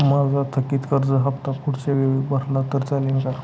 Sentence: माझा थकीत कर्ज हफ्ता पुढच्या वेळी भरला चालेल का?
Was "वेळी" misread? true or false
false